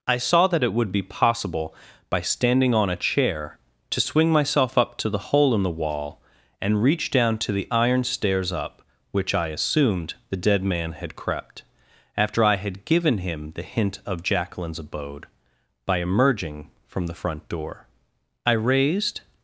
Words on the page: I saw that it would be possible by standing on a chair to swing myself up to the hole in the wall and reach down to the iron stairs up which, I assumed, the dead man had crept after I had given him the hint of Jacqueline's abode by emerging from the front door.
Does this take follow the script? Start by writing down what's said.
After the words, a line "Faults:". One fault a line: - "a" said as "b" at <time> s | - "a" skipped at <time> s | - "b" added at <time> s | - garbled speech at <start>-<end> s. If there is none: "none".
I saw that it would be possible by standing on a chair to swing myself up to the hole in the wall and reach down to the iron stairs up which, I assumed, the dead man had crept after I had given him the hint of Jacqueline's abode by emerging from the front door. I raised
Faults:
- "I raised" added at 18.5 s